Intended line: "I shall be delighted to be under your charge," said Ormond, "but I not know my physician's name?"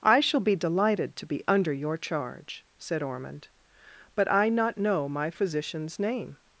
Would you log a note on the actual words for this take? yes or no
no